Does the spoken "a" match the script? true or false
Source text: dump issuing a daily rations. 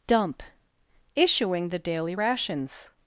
false